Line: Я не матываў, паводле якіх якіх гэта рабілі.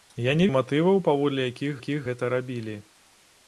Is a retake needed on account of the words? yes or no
no